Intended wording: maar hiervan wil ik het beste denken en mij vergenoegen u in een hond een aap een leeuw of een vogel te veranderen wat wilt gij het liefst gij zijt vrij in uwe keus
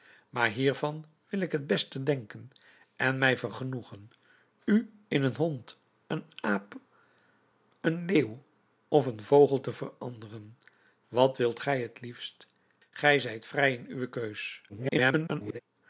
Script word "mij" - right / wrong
right